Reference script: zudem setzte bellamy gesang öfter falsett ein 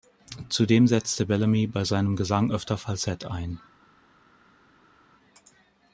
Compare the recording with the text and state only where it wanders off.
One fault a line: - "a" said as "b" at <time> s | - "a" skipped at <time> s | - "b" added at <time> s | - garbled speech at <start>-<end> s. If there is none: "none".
- "bei seinem" added at 1.7 s